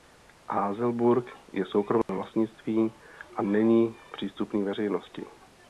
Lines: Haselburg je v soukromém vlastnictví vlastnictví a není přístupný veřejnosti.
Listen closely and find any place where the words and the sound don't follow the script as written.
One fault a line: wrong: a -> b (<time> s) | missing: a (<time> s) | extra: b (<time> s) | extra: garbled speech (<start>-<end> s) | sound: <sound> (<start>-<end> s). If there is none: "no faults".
sound: dropout (2.0-2.1 s)
missing: vlastnictví (2.9 s)